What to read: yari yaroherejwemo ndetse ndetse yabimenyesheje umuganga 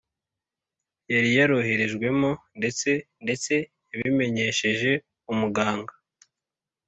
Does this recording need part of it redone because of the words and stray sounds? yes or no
no